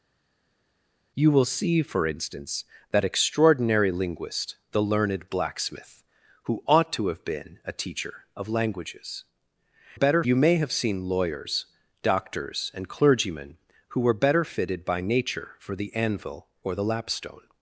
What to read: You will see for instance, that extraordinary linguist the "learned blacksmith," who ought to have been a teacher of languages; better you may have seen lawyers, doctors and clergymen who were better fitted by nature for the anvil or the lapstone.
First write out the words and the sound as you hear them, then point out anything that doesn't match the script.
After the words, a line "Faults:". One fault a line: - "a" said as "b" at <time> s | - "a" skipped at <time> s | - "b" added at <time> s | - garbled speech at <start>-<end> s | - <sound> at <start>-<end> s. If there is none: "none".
You will see for instance, that extraordinary linguist the "learned blacksmith," who ought to have been a teacher of languages; better you may have seen lawyers, doctors and clergymen who were better fitted by nature for the anvil or the lapstone.
Faults:
none